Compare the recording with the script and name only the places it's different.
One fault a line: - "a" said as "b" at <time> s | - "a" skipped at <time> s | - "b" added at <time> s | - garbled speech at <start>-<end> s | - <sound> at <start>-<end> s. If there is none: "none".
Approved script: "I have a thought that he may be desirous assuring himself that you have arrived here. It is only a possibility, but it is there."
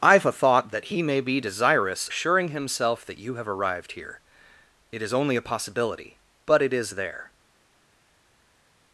none